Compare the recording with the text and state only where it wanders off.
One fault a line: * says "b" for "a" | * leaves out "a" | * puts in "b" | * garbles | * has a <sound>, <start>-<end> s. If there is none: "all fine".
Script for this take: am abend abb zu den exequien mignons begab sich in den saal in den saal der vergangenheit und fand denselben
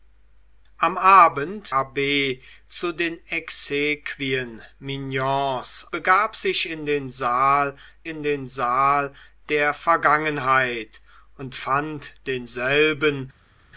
all fine